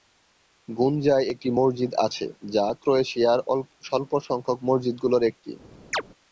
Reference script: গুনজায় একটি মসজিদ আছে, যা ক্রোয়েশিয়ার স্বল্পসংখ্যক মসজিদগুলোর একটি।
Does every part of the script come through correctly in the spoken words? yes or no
yes